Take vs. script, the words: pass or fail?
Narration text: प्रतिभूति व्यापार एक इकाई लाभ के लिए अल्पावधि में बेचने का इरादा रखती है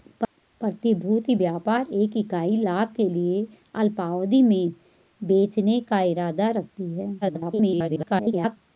fail